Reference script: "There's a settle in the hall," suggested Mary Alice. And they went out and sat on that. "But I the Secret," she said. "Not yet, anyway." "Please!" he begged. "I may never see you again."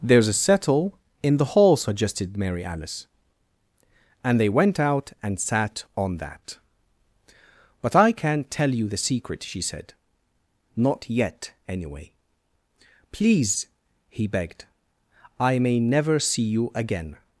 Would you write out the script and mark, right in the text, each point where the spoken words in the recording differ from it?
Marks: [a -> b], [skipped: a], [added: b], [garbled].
"There's a settle in the hall," suggested Mary Alice. And they went out and sat on that. "But I [added: can't tell you] the Secret," she said. "Not yet, anyway." "Please!" he begged. "I may never see you again."